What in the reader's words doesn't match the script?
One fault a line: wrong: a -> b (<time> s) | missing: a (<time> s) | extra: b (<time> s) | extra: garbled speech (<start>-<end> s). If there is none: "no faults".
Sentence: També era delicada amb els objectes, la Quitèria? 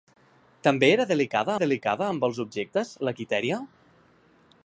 extra: delicada (1.6 s)